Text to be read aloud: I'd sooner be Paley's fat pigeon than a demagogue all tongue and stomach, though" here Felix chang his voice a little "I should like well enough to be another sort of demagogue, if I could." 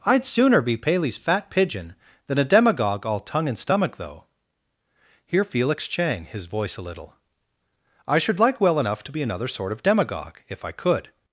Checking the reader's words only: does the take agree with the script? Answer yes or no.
yes